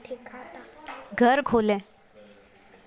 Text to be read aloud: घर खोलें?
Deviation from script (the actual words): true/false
false